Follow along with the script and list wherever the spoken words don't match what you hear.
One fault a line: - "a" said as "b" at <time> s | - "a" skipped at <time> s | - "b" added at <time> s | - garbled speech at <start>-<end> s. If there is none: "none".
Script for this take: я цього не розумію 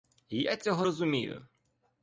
- "не" skipped at 0.8 s